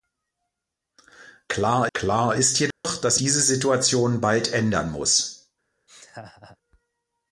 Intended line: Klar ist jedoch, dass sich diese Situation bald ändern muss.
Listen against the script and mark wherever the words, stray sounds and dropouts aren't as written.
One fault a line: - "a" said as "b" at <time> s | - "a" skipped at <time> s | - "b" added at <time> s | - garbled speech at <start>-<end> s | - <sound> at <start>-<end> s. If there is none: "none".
- "klar" added at 1.9 s
- dropout at 2.7-2.8 s
- "sich" skipped at 3.2 s
- laugh at 5.9-6.6 s